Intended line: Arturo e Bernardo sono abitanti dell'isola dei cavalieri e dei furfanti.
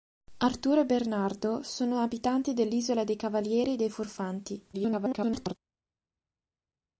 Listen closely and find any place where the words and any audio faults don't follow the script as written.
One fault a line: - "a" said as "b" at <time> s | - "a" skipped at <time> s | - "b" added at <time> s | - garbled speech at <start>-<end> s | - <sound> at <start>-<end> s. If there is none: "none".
- garbled speech at 4.7-5.6 s